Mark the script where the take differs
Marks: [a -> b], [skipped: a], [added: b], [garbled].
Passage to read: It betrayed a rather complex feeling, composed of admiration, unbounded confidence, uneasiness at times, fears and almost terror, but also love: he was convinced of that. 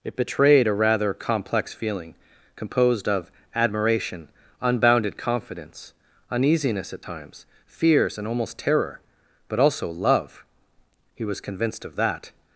It betrayed a rather complex feeling, composed of admiration, unbounded confidence, uneasiness at times, fears and almost terror, but also love: he was convinced of that.